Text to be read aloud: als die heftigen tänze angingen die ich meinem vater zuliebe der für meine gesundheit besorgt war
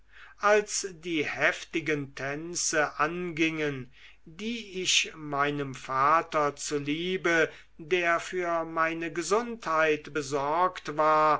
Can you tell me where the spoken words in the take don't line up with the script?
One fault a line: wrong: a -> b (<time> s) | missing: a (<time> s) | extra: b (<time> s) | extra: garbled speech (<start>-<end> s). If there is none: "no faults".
no faults